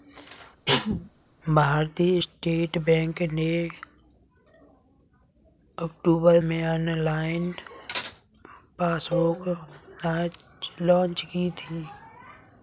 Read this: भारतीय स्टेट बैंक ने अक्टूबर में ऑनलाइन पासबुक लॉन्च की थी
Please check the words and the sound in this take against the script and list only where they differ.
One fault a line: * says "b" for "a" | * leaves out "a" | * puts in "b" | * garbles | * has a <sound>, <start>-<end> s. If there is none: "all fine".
* has a cough, 0.7-1.1 s